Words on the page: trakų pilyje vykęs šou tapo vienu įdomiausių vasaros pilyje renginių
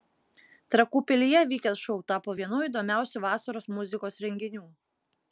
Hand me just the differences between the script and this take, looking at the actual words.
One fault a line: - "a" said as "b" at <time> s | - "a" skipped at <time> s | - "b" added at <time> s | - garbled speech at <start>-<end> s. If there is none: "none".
- "pilyje" said as "muzikos" at 3.8 s